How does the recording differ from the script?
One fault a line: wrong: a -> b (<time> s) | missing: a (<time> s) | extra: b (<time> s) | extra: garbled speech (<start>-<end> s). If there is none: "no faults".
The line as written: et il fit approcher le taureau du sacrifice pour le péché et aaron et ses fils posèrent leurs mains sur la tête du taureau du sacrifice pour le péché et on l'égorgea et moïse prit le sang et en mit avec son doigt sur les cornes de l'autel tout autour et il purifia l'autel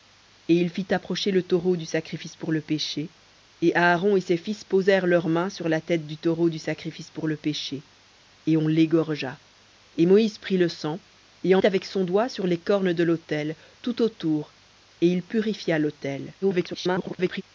missing: mit (11.6 s)
extra: garbled speech (16.4-17.4 s)